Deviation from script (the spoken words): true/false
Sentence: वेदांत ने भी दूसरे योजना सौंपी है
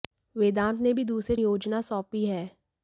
false